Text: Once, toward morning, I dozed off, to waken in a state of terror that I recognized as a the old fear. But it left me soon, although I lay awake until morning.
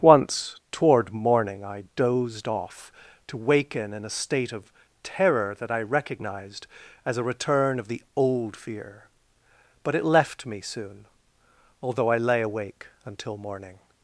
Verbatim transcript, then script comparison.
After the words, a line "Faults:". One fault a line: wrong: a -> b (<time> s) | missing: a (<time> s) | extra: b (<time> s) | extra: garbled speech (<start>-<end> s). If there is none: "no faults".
Once, toward morning, I dozed off, to waken in a state of terror that I recognized as a return of the old fear. But it left me soon, although I lay awake until morning.
Faults:
extra: return of (7.2 s)